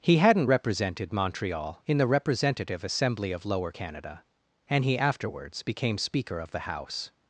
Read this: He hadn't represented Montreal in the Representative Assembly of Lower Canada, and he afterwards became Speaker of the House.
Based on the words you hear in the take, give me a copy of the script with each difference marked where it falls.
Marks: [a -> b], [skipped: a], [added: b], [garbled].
He hadn't represented Montreal in the Representative Assembly of Lower Canada, and he afterwards became Speaker of the House.